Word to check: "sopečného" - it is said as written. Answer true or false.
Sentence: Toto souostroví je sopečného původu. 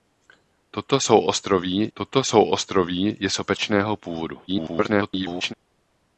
true